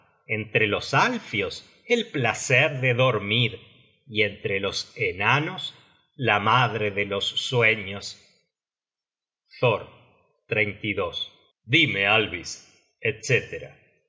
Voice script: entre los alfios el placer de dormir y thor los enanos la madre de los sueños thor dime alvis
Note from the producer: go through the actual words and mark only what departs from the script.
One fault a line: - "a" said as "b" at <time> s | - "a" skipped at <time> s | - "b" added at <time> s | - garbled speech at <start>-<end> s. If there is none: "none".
- "thor" said as "entre" at 4.2 s